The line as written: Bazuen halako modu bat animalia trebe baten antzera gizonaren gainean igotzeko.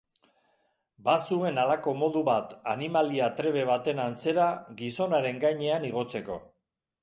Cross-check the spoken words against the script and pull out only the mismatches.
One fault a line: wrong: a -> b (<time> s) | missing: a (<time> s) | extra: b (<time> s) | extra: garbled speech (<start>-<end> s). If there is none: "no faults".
no faults